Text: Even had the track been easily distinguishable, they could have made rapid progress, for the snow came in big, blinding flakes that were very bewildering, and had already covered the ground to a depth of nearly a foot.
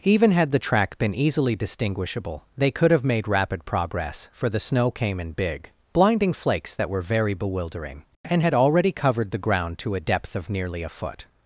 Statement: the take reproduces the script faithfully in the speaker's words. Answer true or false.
true